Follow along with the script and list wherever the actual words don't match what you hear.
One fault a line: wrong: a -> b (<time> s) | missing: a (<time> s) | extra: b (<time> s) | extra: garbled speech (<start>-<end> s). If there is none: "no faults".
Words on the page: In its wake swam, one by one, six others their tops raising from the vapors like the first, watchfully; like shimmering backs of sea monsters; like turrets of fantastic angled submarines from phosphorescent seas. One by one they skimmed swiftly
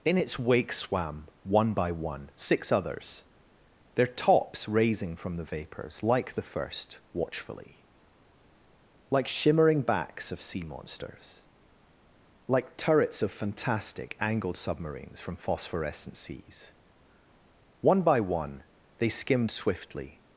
no faults